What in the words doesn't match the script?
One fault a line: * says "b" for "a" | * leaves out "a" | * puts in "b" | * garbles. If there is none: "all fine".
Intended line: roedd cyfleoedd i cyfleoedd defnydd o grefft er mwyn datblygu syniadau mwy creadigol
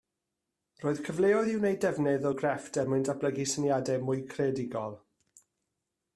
* says "wneud" for "cyfleoedd"